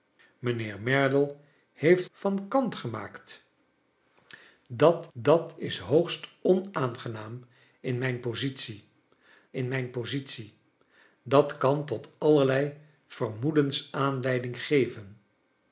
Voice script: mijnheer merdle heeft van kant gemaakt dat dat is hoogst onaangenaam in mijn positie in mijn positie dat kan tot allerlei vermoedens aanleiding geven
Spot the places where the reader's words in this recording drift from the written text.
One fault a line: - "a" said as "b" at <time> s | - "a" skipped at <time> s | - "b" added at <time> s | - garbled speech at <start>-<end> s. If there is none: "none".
none